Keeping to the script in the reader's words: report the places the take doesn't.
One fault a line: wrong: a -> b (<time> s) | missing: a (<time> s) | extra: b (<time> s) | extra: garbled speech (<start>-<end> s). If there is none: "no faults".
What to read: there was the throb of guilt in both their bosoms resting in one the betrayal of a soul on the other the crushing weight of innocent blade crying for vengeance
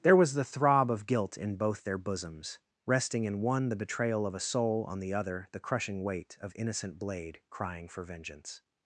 no faults